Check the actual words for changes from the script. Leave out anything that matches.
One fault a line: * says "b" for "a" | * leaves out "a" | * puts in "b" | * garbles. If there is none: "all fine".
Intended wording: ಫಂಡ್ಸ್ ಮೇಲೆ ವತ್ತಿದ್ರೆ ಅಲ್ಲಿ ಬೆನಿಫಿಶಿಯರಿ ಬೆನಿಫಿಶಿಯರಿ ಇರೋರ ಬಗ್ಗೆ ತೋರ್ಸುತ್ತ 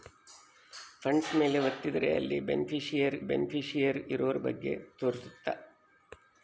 all fine